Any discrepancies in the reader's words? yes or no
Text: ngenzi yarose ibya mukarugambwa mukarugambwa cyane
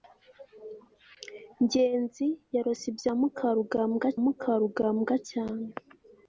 no